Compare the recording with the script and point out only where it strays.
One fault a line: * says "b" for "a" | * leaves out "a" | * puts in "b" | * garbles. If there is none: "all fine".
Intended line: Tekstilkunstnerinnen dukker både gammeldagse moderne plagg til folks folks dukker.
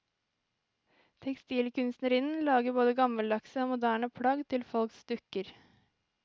* says "lager" for "dukker"
* puts in "og"
* leaves out "folks"